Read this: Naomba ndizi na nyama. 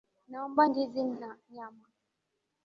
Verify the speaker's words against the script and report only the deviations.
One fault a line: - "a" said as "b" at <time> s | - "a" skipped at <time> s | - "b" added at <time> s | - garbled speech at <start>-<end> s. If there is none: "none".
none